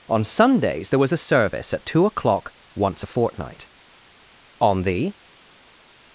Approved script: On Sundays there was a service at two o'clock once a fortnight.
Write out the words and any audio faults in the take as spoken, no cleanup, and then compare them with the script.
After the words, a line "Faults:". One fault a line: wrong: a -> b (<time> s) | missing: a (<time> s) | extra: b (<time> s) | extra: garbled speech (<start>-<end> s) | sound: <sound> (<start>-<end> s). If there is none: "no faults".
On Sundays there was a service at two o'clock once a fortnight. On the
Faults:
extra: On the (4.6 s)